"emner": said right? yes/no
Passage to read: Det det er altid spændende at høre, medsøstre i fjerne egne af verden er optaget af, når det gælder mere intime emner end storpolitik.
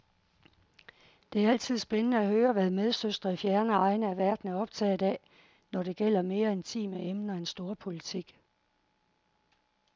yes